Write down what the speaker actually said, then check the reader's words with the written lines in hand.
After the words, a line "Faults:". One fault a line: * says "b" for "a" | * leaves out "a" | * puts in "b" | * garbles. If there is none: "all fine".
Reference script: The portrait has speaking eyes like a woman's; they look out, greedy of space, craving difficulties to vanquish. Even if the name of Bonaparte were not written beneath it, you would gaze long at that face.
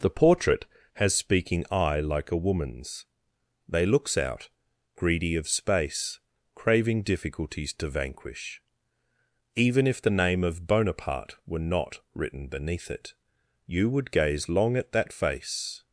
The portrait has speaking eye like a woman's; they looks out, greedy of space, craving difficulties to vanquish. Even if the name of Bonaparte were not written beneath it, you would gaze long at that face.
Faults:
* says "eye" for "eyes"
* says "looks" for "look"